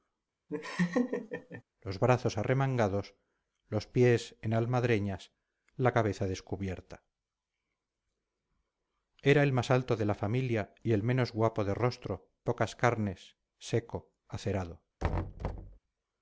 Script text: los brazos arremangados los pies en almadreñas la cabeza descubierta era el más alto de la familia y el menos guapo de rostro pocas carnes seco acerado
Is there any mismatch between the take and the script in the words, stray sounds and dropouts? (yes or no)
yes